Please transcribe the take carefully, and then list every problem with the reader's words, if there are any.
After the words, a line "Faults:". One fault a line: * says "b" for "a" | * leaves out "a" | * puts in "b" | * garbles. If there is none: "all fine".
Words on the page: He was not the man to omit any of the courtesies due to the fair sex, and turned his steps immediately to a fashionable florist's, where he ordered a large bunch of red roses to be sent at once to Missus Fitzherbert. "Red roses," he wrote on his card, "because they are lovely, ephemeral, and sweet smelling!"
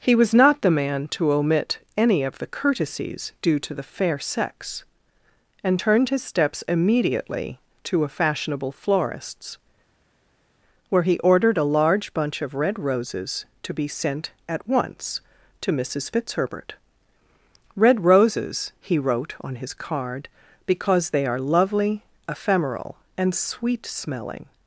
He was not the man to omit any of the courtesies due to the fair sex, and turned his steps immediately to a fashionable florist's, where he ordered a large bunch of red roses to be sent at once to Missus Fitzherbert. "Red roses," he wrote on his card, "because they are lovely, ephemeral, and sweet smelling!"
Faults:
all fine